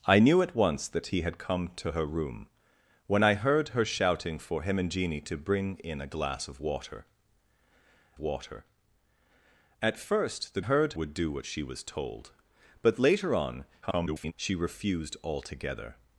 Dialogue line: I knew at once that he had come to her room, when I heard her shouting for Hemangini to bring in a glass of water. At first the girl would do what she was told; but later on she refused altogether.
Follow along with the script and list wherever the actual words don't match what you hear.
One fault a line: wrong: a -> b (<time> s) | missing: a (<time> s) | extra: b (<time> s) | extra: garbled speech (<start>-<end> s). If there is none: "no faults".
extra: water (8.2 s)
wrong: girl -> heard (10.6 s)
extra: garbled speech (13.8-14.3 s)